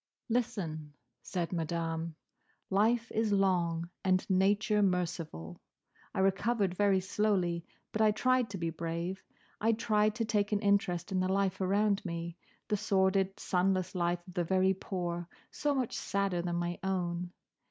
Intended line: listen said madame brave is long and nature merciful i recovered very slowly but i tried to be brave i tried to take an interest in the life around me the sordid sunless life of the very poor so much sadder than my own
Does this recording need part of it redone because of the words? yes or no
yes